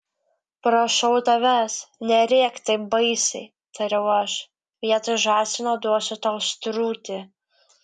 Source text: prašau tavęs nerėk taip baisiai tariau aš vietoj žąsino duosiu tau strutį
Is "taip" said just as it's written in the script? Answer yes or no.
yes